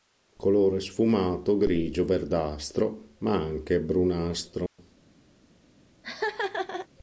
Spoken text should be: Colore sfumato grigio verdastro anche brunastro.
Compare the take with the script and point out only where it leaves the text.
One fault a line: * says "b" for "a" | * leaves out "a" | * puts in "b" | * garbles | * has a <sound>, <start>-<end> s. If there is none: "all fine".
* puts in "ma"
* has a dropout, 4.7-4.8 s
* has a laugh, 6.0-6.9 s